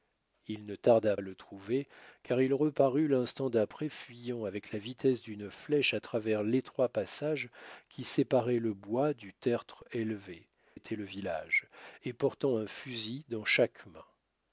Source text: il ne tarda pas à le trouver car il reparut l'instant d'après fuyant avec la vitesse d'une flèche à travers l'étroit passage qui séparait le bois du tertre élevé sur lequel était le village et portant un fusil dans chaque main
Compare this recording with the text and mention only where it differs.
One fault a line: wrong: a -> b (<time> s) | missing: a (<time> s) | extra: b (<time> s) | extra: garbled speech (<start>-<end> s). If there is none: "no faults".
missing: pas (1.1 s)
missing: sur lequel (10.5 s)